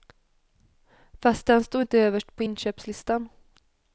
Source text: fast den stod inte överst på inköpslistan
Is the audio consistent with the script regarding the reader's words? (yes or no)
yes